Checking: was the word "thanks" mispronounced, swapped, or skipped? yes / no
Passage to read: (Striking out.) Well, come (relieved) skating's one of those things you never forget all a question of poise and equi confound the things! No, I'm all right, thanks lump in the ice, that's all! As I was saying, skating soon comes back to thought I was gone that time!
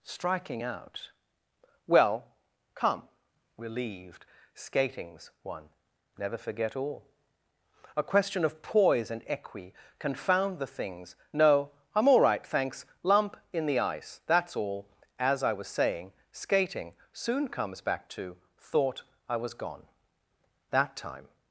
no